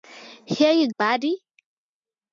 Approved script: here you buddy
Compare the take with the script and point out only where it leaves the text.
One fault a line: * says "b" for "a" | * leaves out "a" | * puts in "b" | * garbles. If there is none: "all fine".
all fine